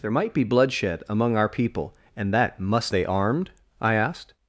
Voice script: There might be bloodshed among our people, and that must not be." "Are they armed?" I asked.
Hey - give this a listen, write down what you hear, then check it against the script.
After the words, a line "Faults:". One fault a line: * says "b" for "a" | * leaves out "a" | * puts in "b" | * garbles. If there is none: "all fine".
There might be bloodshed among our people, and that must they armed?" I asked.
Faults:
* leaves out "not be Are"